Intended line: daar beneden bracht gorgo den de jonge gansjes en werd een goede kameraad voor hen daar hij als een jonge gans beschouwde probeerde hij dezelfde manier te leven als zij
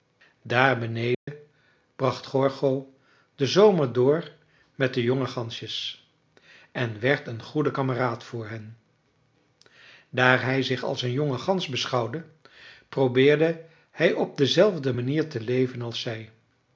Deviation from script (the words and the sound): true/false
true